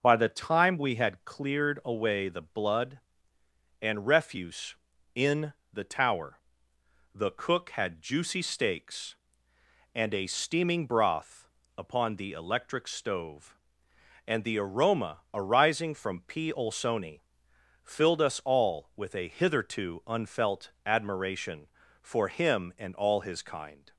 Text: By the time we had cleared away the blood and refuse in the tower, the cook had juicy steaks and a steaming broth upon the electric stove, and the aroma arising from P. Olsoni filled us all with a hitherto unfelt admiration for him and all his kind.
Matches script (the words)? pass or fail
pass